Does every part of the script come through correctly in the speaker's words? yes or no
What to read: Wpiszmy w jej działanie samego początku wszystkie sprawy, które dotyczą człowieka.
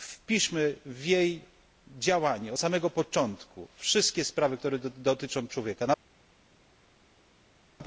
yes